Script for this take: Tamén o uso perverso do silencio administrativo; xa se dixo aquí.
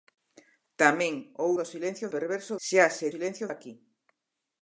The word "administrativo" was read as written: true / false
false